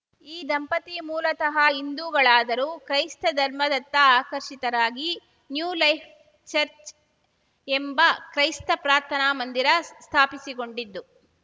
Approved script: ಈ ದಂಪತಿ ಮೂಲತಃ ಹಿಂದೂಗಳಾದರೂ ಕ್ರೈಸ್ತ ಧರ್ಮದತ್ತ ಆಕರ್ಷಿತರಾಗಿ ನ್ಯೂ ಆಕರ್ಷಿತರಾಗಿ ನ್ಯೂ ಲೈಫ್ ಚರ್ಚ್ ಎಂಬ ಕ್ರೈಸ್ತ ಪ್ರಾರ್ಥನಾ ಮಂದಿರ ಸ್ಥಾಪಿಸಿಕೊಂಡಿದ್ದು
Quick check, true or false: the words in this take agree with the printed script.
false